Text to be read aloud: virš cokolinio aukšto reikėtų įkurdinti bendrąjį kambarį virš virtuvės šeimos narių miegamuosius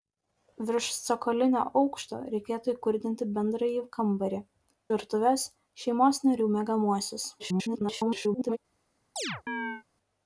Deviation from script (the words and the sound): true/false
true